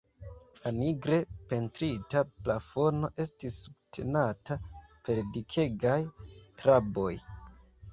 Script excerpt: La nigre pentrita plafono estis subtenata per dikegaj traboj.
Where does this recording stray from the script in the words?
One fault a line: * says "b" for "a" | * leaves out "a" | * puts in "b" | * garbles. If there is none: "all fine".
all fine